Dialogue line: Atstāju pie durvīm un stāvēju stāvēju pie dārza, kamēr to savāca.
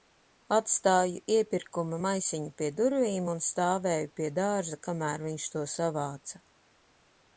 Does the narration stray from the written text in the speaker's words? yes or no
yes